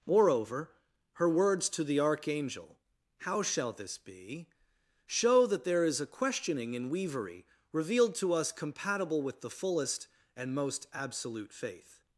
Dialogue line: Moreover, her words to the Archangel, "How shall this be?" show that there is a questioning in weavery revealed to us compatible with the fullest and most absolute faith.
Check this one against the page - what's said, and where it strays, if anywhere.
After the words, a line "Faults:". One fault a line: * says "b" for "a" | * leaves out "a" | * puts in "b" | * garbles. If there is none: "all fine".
Moreover, her words to the Archangel, "How shall this be?" show that there is a questioning in weavery revealed to us compatible with the fullest and most absolute faith.
Faults:
all fine